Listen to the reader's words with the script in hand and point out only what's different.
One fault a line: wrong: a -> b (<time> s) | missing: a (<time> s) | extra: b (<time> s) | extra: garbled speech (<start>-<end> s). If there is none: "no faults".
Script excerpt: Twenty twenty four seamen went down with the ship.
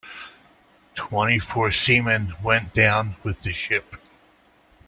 missing: twenty (1.4 s)